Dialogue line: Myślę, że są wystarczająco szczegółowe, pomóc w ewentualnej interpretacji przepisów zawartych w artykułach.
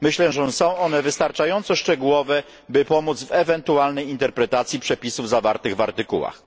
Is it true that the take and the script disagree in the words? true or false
true